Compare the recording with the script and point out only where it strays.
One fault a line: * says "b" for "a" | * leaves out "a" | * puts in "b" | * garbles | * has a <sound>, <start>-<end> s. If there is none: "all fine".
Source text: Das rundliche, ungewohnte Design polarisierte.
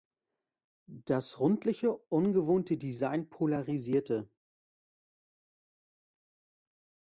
all fine